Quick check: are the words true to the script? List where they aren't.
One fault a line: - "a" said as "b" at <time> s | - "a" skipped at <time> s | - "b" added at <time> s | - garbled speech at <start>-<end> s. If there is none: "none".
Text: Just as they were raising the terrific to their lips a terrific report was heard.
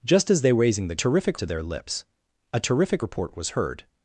none